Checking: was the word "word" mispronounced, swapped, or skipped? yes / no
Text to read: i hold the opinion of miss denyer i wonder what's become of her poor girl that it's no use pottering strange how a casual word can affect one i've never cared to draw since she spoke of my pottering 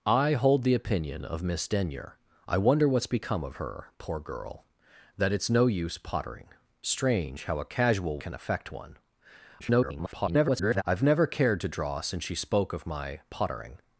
yes